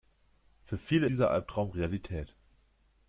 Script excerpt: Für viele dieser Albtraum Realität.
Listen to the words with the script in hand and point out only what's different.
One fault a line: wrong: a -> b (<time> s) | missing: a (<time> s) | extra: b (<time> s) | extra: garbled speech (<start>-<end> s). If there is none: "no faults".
no faults